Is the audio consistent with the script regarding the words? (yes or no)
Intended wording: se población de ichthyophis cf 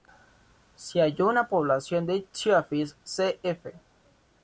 no